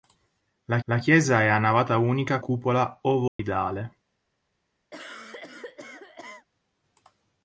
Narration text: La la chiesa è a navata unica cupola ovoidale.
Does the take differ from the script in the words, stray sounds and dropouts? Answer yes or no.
yes